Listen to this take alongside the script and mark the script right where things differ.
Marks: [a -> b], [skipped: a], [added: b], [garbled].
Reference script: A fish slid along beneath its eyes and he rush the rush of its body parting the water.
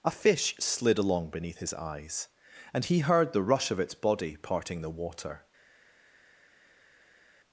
A fish slid along beneath [its -> his] eyes and he [rush -> heard] the rush of its body parting the water.